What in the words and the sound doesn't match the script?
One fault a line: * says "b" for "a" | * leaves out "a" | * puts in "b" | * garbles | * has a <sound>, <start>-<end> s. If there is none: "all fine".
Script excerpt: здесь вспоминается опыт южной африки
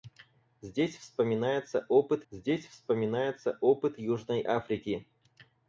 * puts in "здесь вспоминается опыт"